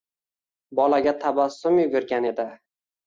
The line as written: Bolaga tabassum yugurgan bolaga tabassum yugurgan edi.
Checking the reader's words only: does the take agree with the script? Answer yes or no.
no